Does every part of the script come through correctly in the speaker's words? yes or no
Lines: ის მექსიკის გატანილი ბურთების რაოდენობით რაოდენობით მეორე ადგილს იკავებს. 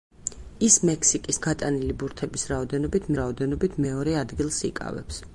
yes